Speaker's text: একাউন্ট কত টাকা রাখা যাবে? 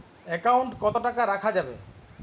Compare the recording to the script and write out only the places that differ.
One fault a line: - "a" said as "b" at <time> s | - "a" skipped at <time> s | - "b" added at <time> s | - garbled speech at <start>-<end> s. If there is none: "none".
none